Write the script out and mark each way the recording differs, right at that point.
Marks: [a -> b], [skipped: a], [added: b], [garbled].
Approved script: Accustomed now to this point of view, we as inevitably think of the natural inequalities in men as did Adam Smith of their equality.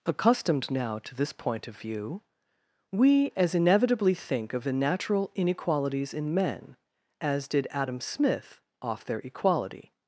Accustomed now to this point of view, we as inevitably think of the natural inequalities in men as did Adam Smith [of -> off] their equality.